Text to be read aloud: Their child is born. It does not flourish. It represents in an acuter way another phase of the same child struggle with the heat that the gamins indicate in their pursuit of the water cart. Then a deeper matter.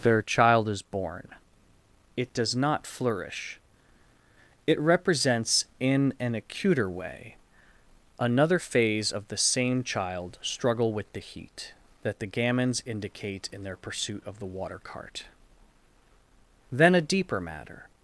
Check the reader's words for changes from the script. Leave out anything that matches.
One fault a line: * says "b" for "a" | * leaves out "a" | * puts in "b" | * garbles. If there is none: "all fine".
all fine